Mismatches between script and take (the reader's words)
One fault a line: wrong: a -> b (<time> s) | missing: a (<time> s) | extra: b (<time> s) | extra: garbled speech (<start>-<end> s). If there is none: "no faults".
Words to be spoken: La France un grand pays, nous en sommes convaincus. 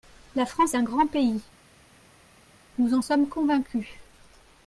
no faults